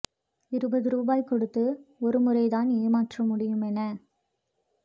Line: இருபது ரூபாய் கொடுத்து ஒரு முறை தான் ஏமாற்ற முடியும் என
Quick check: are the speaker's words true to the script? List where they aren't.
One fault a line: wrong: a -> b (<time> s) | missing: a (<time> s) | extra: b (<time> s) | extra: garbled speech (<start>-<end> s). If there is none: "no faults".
no faults